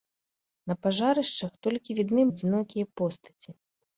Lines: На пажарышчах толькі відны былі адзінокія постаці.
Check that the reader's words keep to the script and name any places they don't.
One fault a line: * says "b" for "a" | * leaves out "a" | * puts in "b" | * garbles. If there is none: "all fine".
* leaves out "былі"